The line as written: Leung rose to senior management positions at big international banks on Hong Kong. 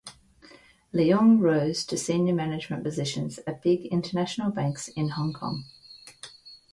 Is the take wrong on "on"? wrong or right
wrong